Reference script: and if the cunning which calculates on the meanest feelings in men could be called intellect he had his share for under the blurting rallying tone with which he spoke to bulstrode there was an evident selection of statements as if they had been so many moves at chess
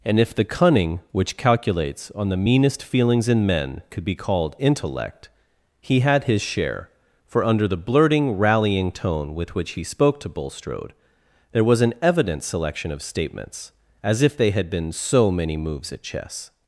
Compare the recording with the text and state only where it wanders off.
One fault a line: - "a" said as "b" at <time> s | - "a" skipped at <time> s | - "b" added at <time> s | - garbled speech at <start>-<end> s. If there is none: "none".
none